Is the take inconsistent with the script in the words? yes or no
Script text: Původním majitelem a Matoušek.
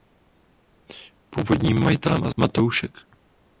no